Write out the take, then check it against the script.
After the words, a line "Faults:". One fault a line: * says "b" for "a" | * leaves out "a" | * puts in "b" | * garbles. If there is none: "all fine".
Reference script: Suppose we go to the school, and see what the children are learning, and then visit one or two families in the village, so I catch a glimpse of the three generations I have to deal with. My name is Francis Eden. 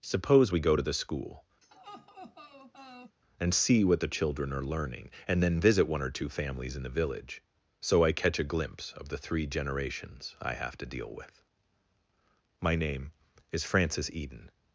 Suppose we go to the school, and see what the children are learning, and then visit one or two families in the village, so I catch a glimpse of the three generations I have to deal with. My name is Francis Eden.
Faults:
all fine